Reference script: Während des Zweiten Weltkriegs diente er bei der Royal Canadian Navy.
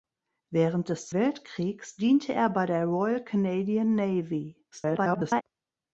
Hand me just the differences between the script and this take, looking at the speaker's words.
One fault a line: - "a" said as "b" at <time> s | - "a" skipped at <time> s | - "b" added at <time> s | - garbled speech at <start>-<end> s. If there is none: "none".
- "Zweiten" skipped at 1.1 s
- garbled speech at 4.7-5.4 s